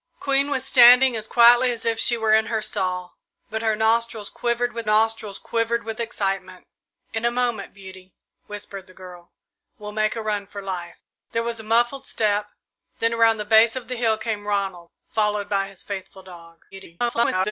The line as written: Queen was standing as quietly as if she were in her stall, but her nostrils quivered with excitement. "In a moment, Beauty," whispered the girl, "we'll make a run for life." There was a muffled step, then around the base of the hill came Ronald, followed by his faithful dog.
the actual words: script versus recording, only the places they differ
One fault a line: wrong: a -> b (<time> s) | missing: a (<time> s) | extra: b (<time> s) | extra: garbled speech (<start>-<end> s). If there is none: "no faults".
extra: nostrils quivered with (4.8 s)
extra: garbled speech (16.7-17.5 s)